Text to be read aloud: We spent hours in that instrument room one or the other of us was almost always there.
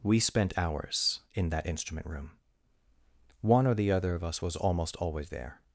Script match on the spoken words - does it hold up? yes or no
yes